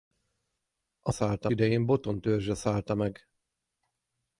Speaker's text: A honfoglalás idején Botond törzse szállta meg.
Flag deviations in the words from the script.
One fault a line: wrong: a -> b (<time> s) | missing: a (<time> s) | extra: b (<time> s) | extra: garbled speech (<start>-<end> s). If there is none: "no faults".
wrong: honfoglalás -> szállta (1.1 s)